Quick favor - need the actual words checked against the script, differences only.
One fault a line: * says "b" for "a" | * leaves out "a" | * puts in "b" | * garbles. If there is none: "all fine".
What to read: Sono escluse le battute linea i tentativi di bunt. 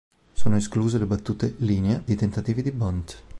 all fine